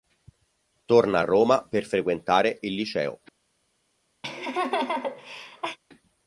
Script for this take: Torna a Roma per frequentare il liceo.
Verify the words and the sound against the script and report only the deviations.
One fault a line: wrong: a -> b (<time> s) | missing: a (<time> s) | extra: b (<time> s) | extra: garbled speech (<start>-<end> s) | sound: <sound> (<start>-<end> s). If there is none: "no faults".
sound: laugh (4.2-5.8 s)